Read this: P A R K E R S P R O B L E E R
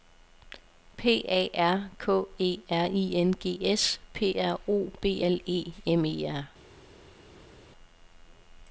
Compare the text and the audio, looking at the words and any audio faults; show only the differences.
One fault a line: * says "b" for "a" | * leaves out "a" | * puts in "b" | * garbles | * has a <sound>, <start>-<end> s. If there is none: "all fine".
* puts in "I N G"
* puts in "M"